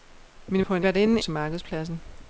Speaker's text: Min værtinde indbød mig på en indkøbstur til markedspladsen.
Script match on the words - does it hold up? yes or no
no